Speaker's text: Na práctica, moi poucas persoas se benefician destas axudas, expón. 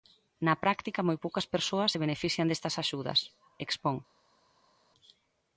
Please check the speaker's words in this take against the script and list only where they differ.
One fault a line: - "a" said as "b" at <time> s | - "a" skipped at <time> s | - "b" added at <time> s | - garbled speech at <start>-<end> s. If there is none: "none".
none